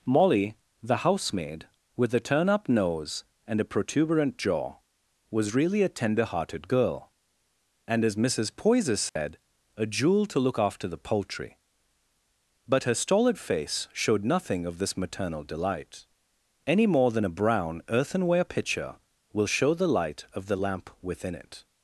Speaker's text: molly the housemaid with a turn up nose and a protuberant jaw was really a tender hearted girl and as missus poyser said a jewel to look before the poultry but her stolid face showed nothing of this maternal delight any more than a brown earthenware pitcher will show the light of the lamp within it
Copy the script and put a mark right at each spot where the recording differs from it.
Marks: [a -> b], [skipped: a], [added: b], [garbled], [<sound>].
molly the housemaid with a turn up nose and a protuberant jaw was really a tender hearted girl and as missus poyser said [dropout] a jewel to look [before -> after] the poultry but her stolid face showed nothing of this maternal delight any more than a brown earthenware pitcher will show the light of the lamp within it